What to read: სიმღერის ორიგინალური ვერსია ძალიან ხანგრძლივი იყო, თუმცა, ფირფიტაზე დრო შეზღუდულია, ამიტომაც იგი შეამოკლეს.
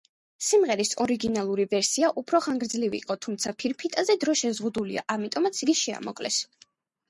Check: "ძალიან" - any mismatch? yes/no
yes